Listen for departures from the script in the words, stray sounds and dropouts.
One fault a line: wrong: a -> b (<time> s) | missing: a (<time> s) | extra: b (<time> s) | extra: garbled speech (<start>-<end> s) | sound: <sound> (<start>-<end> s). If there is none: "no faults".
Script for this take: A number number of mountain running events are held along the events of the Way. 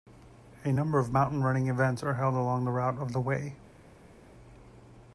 missing: number (1.0 s)
wrong: events -> route (2.7 s)